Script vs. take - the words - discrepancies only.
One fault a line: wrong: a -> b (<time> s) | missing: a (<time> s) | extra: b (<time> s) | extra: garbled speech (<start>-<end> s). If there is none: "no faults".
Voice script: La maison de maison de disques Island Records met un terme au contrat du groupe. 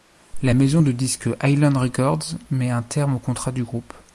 missing: maison de (0.9 s)